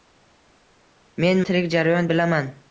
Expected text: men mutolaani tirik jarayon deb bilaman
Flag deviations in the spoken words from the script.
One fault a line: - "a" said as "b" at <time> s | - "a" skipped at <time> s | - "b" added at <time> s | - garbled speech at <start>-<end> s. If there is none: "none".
- "mutolaani" skipped at 1.4 s
- "deb" skipped at 2.1 s